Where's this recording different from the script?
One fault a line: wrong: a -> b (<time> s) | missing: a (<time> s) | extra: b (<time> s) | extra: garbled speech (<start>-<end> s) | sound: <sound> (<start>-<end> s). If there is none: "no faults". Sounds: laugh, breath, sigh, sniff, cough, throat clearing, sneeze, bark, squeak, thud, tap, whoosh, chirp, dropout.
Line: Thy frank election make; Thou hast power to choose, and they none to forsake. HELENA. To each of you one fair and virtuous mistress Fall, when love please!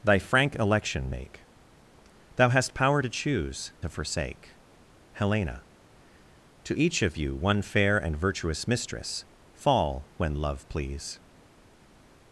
missing: and they none (3.7 s)